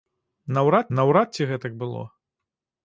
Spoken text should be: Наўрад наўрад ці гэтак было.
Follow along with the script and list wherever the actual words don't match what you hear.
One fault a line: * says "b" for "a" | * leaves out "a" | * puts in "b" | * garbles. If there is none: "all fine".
all fine